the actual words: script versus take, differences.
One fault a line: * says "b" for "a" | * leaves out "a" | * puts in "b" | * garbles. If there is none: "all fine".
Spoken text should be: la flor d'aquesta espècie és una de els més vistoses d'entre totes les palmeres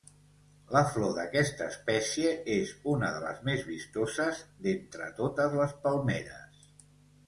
* says "les" for "els"